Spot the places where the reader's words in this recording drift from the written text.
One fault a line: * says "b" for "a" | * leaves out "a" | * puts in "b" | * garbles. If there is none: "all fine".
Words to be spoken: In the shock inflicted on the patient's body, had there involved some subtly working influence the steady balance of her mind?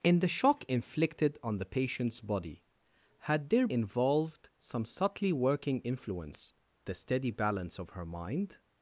all fine